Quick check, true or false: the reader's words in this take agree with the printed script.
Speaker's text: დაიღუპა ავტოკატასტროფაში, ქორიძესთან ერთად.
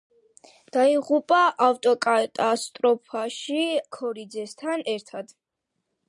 true